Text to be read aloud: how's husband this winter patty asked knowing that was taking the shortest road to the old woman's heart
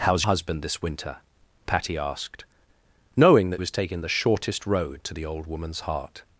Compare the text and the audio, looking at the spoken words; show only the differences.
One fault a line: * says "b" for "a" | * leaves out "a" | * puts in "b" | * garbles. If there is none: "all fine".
all fine